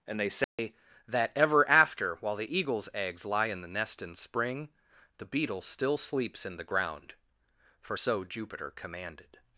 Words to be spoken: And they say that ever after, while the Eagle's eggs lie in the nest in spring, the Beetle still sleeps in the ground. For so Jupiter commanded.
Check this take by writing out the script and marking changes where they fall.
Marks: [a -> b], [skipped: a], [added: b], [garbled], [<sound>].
And they say [dropout] that ever after, while the Eagle's eggs lie in the nest in spring, the Beetle still sleeps in the ground. For so Jupiter commanded.